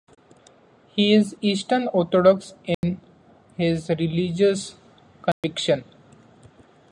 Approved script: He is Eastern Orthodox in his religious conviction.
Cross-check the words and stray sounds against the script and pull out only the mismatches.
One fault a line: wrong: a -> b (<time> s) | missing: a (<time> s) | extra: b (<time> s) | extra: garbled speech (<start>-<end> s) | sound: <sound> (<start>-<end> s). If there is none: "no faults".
sound: dropout (2.7-2.8 s)
sound: dropout (5.3-5.4 s)